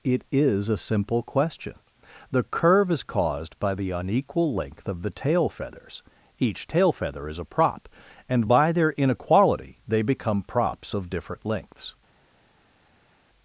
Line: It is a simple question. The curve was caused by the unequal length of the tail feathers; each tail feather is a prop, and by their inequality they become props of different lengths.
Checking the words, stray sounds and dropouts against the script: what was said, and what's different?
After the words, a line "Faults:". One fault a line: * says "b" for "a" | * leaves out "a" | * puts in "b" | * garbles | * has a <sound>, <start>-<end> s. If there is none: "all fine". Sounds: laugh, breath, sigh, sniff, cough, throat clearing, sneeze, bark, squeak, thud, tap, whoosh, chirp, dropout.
It is a simple question. The curve is caused by the unequal length of the tail feathers; each tail feather is a prop, and by their inequality they become props of different lengths.
Faults:
* says "is" for "was"